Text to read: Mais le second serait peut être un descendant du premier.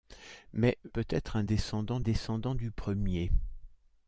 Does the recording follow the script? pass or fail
fail